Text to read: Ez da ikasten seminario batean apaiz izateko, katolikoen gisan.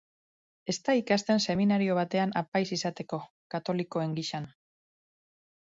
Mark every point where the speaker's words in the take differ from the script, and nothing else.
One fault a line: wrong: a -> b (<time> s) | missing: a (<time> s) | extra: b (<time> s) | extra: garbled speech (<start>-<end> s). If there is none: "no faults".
no faults